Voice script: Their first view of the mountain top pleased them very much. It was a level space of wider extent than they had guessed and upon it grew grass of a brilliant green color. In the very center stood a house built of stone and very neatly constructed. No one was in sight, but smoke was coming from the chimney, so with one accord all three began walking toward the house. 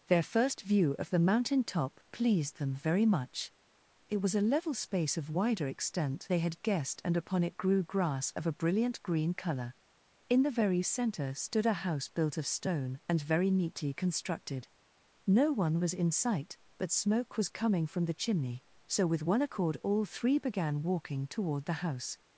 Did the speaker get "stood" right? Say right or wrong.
right